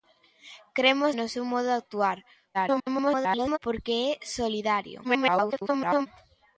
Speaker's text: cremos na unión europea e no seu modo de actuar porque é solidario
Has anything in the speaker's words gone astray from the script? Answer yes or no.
yes